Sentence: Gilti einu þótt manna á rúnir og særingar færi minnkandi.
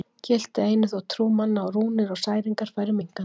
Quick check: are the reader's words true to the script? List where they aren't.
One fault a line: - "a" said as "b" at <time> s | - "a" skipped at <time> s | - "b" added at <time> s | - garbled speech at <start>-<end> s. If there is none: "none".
- "trú" added at 1.1 s